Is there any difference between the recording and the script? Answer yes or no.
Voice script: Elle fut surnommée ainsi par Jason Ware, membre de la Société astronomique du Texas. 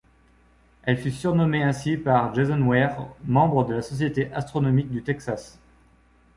no